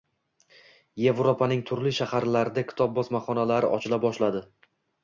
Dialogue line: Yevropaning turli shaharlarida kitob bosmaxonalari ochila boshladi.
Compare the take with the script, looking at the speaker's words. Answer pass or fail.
pass